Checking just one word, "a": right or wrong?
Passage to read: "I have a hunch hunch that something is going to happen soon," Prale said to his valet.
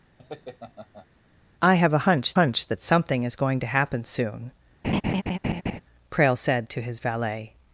right